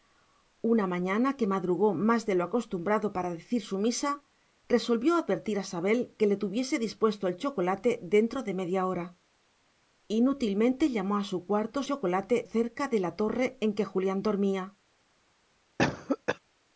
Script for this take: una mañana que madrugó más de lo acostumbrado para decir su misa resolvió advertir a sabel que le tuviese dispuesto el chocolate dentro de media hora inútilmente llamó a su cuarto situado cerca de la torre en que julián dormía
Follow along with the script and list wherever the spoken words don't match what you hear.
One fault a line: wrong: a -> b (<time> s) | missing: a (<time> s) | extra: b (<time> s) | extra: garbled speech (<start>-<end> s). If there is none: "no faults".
wrong: situado -> chocolate (11.8 s)